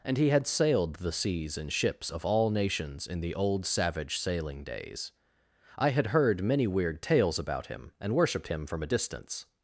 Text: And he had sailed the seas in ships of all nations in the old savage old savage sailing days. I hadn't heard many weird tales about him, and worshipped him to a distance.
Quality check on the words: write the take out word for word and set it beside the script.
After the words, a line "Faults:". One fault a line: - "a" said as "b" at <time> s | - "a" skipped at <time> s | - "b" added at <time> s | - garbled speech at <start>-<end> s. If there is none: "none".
And he had sailed the seas in ships of all nations in the old savage sailing days. I had heard many weird tales about him, and worshipped him from a distance.
Faults:
- "old savage" skipped at 4.2 s
- "hadn't" said as "had" at 5.9 s
- "to" said as "from" at 8.7 s